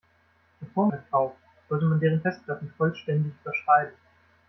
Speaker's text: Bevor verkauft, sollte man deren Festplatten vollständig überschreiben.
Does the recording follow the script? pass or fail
pass